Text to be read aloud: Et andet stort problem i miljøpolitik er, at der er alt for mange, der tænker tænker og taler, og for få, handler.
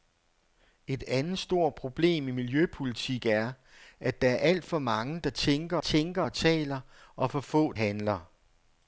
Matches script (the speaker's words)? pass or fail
pass